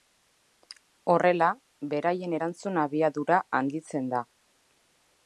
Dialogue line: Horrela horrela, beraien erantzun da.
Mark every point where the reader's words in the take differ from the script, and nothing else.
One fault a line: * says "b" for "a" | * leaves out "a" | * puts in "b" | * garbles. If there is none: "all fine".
* leaves out "horrela"
* puts in "abiadura handitzen"